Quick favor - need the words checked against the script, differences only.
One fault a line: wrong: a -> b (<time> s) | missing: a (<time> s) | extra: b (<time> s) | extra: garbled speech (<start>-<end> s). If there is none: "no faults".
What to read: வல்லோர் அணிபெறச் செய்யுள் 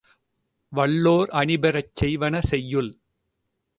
extra: செய்வன (2.0 s)